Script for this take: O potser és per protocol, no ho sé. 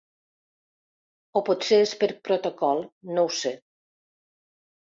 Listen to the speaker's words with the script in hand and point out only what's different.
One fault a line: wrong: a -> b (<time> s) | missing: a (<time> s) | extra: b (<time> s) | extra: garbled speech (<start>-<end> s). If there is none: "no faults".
no faults